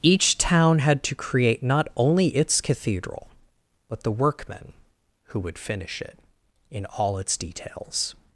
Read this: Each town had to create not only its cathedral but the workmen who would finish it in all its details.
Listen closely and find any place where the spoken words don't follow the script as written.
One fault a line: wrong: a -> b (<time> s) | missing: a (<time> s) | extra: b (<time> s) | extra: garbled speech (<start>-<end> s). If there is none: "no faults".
no faults